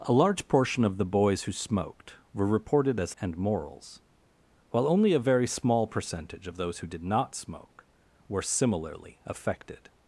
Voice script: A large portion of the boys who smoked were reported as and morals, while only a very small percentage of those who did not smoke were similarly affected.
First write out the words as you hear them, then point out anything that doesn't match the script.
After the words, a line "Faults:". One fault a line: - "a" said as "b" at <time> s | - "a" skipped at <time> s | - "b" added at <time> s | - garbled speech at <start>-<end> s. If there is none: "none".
A large portion of the boys who smoked were reported as and morals, while only a very small percentage of those who did not smoke were similarly affected.
Faults:
none